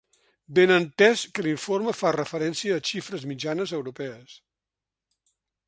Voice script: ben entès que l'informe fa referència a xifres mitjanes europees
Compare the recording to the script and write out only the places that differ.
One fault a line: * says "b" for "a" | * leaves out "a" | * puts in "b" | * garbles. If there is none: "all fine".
all fine